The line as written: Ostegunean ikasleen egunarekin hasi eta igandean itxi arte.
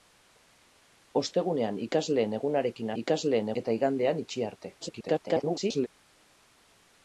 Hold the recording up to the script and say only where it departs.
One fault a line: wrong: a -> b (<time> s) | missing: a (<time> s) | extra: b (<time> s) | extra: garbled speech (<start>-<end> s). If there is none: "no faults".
wrong: hasi -> ikasleen (3.0 s)
extra: garbled speech (4.8-5.9 s)